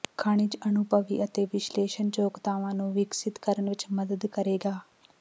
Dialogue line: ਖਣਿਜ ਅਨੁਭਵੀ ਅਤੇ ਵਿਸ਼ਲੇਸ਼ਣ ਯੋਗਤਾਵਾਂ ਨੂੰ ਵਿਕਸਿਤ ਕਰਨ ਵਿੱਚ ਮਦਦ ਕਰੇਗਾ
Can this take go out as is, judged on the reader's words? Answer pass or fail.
pass